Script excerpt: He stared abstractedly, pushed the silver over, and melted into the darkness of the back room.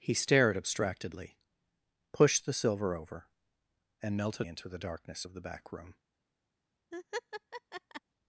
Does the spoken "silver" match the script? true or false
true